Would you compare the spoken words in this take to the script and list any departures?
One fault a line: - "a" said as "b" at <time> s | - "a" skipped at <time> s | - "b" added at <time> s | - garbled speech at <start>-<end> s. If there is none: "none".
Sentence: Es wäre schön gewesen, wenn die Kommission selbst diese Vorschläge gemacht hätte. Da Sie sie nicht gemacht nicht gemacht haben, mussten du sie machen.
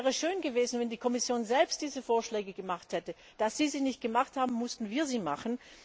- "nicht gemacht" skipped at 4.4 s
- "du" said as "wir" at 4.9 s